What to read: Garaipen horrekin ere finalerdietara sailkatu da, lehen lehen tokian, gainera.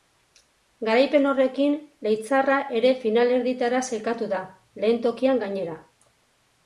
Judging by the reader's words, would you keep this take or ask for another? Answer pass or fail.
fail